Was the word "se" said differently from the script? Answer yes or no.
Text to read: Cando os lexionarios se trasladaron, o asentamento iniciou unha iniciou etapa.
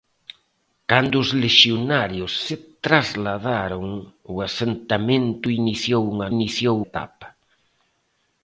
no